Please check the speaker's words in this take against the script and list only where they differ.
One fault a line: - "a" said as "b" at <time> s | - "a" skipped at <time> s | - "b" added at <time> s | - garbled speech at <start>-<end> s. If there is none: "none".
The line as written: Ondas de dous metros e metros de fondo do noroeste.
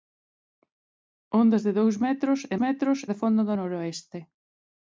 none